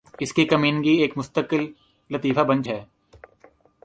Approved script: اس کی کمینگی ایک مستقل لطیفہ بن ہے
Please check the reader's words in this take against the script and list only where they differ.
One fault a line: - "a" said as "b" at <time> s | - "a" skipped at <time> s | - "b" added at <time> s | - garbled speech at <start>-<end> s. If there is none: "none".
none